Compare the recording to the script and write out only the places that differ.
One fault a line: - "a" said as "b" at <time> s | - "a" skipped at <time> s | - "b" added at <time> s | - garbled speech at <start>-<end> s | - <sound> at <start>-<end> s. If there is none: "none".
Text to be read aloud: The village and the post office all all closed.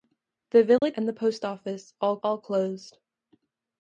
- dropout at 0.8-0.8 s